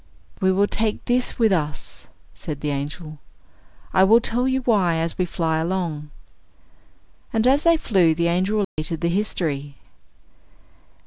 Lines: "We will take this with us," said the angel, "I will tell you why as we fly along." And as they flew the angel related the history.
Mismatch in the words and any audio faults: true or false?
true